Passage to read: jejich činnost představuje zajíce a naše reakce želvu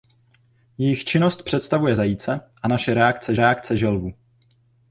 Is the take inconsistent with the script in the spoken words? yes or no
yes